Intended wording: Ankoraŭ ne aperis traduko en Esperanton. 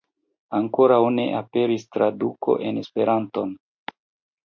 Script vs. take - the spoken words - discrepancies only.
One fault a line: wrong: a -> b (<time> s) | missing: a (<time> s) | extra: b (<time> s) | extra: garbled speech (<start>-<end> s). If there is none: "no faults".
no faults